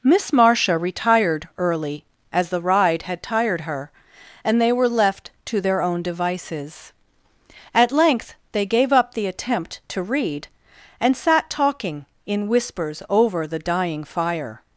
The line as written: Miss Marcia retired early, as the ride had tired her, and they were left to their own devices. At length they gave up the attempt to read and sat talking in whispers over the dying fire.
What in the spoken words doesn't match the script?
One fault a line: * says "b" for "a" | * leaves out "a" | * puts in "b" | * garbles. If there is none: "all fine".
all fine